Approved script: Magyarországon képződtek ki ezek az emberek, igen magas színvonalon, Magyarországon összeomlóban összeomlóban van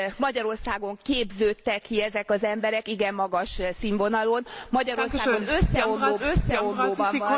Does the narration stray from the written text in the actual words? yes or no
no